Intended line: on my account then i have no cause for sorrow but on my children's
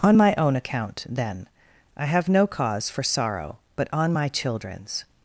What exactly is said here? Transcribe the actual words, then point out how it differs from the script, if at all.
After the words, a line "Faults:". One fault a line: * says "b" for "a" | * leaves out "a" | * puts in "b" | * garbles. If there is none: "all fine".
on my own account then i have no cause for sorrow but on my children's
Faults:
* puts in "own"